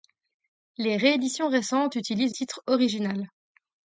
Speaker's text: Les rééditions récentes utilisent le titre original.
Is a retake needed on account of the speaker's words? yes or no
yes